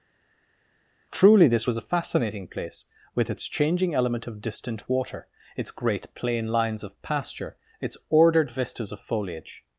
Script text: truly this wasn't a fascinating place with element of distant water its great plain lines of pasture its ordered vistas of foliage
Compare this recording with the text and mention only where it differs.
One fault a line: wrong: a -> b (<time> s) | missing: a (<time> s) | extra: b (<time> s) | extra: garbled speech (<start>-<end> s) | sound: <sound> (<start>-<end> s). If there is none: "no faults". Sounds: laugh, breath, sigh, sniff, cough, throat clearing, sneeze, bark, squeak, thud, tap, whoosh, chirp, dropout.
wrong: wasn't -> was (1.6 s)
extra: its changing (3.3 s)